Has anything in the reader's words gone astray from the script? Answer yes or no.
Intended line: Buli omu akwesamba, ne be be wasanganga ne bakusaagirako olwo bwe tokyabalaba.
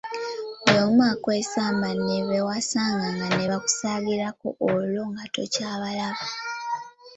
yes